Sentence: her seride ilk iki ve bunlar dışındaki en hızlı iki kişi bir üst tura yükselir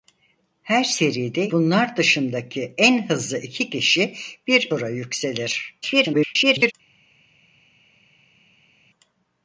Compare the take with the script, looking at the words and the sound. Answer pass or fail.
fail